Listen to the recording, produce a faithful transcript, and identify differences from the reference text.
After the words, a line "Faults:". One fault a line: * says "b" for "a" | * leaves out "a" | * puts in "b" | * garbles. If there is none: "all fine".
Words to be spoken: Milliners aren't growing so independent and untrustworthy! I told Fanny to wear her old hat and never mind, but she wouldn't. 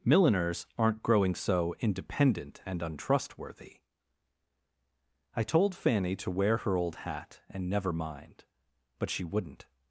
Milliners aren't growing so independent and untrustworthy! I told Fanny to wear her old hat and never mind, but she wouldn't.
Faults:
all fine